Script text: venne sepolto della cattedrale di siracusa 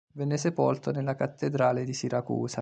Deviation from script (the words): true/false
true